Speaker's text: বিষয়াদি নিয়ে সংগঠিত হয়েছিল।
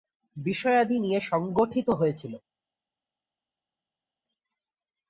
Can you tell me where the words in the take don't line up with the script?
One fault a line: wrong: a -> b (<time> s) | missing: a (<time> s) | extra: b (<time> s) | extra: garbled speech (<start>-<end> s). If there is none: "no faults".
no faults